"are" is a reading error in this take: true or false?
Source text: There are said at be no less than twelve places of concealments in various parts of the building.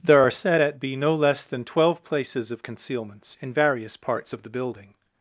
false